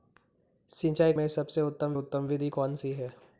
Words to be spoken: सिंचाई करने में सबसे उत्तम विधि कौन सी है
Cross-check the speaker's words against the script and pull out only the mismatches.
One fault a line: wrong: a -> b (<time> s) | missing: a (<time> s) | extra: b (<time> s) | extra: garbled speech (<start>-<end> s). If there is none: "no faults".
missing: करने (1.1 s)
extra: उत्तम (1.9 s)